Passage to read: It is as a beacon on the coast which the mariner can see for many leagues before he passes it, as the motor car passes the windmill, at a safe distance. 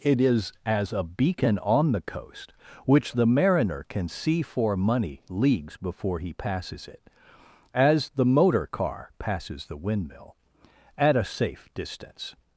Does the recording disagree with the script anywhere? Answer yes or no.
yes